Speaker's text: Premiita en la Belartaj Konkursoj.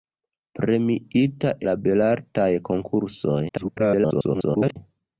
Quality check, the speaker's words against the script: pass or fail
fail